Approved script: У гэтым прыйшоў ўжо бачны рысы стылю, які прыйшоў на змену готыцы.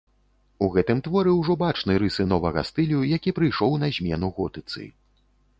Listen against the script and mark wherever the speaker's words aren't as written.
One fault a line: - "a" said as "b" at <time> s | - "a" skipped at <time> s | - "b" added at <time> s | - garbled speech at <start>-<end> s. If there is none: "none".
- "прыйшоў" said as "творы" at 1.1 s
- "новага" added at 2.3 s